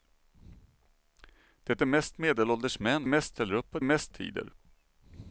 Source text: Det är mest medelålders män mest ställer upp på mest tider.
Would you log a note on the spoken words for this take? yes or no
no